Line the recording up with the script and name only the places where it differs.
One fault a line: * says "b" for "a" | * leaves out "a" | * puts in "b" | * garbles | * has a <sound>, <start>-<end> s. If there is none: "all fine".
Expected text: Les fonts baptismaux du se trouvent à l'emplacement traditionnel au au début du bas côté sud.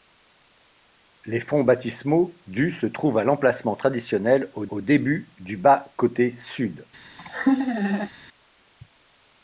* has a laugh, 7.2-8.1 s